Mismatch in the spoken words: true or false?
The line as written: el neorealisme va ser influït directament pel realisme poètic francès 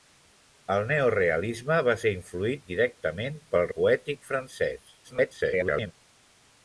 true